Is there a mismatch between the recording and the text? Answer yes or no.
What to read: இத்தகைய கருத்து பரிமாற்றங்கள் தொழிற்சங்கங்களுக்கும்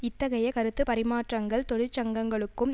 no